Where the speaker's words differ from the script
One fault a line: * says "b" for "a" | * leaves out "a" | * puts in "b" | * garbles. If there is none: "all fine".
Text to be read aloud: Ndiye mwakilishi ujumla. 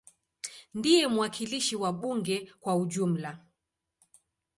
* puts in "wa bunge kwa"